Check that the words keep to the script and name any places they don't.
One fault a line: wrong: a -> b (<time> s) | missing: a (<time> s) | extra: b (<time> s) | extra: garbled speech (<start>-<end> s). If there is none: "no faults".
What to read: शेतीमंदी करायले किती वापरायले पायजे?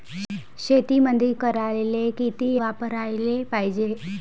no faults